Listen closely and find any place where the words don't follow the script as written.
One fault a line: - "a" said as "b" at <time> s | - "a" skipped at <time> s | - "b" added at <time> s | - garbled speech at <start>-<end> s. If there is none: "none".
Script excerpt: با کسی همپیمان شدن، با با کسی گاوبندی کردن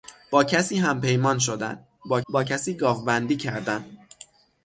none